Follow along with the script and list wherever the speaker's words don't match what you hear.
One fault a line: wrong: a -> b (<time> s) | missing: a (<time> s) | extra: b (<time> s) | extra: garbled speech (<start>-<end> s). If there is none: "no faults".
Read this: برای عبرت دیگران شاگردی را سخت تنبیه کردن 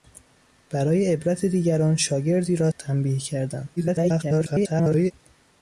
missing: سخت (2.7 s)
extra: garbled speech (3.8-5.1 s)